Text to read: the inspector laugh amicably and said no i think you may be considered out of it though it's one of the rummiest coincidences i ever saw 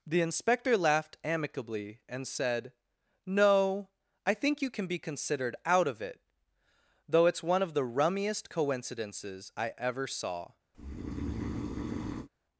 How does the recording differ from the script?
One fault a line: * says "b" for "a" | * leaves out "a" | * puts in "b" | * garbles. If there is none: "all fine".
* says "laughed" for "laugh"
* says "can" for "may"